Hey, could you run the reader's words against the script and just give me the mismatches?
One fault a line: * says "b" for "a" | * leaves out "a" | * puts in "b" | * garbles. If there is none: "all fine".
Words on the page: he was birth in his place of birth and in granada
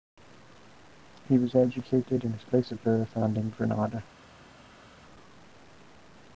* says "educated" for "birth"